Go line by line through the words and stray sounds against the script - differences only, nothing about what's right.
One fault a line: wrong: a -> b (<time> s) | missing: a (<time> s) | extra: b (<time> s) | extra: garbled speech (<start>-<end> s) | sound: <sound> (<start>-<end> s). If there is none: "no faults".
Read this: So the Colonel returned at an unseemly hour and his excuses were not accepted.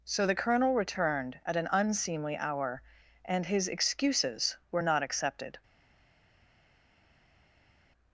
no faults